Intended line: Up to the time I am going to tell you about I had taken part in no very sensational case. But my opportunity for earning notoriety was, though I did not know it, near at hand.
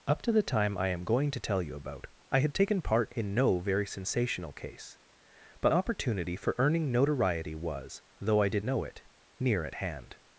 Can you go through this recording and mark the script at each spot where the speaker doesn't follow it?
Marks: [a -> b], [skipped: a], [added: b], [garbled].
Up to the time I am going to tell you about I had taken part in no very sensational case. But [skipped: my] opportunity for earning notoriety was, though I did [skipped: not] know it, near at hand.